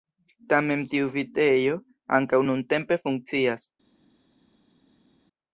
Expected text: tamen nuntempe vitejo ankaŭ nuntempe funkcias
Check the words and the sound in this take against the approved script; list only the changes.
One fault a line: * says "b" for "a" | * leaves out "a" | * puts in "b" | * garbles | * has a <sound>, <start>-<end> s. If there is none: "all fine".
* says "tiu" for "nuntempe"